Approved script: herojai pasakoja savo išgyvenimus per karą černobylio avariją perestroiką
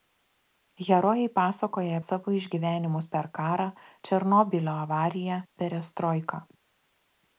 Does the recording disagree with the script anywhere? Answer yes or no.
no